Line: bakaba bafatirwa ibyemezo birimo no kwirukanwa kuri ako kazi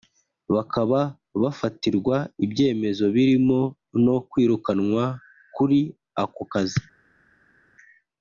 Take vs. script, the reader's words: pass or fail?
pass